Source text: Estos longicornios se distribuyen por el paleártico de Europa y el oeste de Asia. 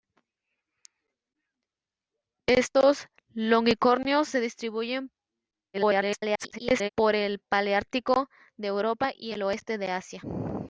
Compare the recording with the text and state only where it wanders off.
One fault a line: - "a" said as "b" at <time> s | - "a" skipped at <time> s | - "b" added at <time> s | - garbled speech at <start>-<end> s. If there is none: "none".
- garbled speech at 5.7-6.9 s